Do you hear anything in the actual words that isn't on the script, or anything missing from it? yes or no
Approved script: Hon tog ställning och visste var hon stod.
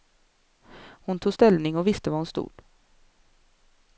no